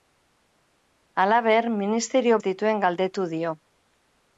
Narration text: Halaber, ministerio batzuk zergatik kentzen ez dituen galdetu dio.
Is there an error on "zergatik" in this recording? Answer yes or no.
yes